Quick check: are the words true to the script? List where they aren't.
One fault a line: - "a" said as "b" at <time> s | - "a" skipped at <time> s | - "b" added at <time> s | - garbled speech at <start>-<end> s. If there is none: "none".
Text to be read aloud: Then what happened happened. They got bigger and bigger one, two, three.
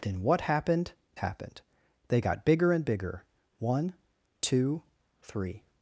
none